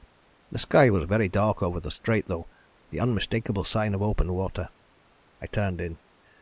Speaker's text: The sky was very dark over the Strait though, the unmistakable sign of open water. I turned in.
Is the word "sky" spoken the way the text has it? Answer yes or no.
yes